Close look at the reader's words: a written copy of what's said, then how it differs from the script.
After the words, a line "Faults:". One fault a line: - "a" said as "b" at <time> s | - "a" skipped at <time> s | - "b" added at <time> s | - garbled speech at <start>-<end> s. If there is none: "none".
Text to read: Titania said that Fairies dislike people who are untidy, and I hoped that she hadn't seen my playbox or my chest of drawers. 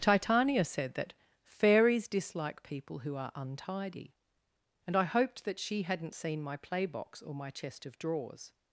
Titania said that Fairies dislike people who are untidy, and I hoped that she hadn't seen my playbox or my chest of drawers.
Faults:
none